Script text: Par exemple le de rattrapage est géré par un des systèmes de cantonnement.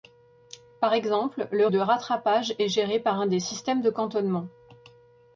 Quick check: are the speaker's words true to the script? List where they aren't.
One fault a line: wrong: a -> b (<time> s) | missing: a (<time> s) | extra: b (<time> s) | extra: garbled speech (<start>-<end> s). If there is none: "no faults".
no faults